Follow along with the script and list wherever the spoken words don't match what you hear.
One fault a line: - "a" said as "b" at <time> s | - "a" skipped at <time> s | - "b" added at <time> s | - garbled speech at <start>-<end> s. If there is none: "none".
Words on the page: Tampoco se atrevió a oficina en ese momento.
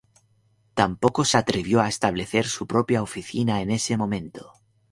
- "establecer su propia" added at 1.9 s